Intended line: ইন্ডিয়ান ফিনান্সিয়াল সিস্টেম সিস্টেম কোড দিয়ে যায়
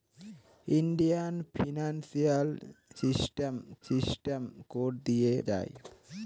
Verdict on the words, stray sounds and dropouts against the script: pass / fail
pass